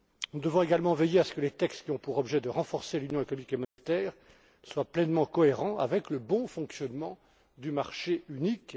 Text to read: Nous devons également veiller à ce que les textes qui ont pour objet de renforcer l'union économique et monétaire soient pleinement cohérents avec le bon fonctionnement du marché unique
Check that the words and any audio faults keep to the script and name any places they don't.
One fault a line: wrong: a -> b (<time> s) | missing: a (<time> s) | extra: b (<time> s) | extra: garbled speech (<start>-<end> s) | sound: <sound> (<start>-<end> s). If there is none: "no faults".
sound: dropout (3.6-3.8 s)